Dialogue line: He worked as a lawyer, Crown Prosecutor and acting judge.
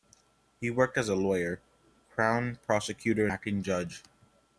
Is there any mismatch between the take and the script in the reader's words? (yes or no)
yes